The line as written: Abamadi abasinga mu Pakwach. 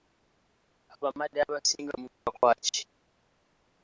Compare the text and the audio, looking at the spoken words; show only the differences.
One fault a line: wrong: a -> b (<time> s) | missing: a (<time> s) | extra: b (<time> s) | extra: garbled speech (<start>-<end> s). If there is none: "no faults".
no faults